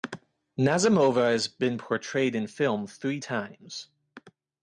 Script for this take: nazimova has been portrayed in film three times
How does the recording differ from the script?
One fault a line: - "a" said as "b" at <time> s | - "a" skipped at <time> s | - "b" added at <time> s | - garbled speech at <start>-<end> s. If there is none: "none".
none